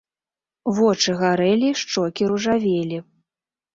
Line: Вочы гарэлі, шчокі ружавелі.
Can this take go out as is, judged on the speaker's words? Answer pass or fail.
pass